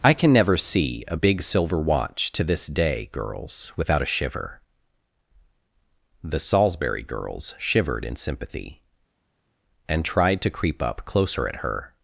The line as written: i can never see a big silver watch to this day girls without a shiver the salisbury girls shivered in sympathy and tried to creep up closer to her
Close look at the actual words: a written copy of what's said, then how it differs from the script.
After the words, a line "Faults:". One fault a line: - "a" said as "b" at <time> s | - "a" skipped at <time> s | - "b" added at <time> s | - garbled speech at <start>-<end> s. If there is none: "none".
i can never see a big silver watch to this day girls without a shiver the salisbury girls shivered in sympathy and tried to creep up closer at her
Faults:
- "to" said as "at" at 11.5 s